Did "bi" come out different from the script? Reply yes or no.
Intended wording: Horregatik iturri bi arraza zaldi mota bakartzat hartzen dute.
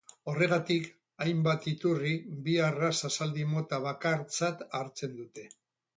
no